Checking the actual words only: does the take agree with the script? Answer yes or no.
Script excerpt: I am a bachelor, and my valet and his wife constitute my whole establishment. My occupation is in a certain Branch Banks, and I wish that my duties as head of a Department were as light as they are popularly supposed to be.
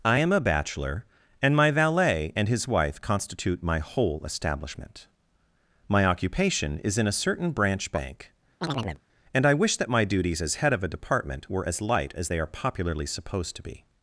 no